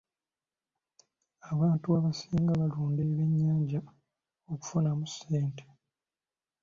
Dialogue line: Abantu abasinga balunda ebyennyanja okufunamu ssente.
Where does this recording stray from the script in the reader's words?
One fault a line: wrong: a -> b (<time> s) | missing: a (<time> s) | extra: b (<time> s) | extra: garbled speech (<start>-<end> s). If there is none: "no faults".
no faults